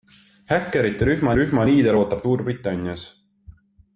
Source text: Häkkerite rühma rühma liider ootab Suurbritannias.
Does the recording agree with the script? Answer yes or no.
yes